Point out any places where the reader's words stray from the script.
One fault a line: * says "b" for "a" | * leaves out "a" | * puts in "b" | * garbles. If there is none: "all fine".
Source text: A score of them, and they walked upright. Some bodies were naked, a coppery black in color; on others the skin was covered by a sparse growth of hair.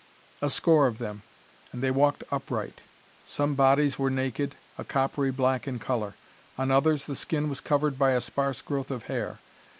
all fine